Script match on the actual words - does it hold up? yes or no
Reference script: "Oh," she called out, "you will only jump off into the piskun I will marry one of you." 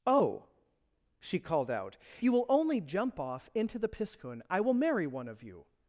yes